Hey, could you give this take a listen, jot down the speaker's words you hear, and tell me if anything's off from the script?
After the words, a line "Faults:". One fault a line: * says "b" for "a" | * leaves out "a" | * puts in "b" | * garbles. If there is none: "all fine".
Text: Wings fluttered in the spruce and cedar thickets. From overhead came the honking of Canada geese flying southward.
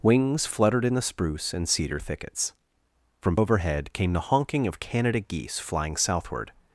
Wings fluttered in the spruce and cedar thickets. From overhead came the honking of Canada geese flying southward.
Faults:
all fine